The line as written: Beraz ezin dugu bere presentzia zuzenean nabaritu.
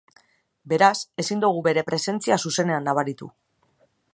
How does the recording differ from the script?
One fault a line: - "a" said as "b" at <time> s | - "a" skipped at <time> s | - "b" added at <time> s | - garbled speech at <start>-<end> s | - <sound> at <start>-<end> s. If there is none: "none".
none